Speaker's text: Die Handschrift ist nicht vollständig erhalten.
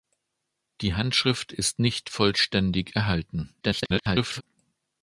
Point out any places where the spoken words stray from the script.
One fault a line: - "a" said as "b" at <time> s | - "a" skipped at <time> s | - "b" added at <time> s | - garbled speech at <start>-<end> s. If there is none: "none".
- garbled speech at 3.6-4.4 s